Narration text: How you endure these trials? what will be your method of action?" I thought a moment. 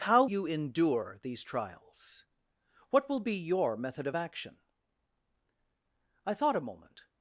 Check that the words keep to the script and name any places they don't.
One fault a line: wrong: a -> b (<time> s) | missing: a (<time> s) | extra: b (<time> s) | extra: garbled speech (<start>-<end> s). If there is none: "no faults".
no faults